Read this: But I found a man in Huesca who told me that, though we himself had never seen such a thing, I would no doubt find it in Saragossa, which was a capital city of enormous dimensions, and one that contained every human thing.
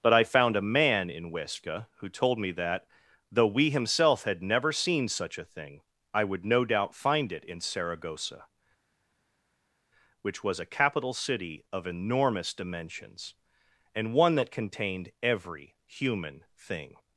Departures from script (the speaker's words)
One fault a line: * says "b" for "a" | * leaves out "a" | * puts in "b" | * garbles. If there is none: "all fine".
all fine